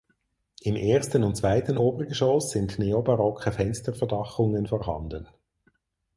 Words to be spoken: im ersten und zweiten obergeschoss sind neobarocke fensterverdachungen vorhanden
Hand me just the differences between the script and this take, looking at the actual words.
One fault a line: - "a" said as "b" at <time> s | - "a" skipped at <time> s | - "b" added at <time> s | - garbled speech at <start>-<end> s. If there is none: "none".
none